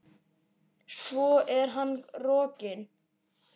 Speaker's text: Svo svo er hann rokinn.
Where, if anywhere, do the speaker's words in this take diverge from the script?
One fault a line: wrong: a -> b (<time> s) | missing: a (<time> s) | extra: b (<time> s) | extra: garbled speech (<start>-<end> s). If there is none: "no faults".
missing: svo (1.3 s)